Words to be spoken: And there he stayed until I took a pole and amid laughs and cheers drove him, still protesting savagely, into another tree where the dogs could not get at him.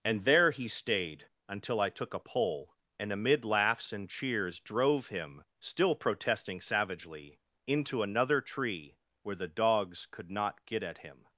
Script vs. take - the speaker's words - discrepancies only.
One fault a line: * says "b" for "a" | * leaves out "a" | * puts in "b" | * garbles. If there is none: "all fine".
all fine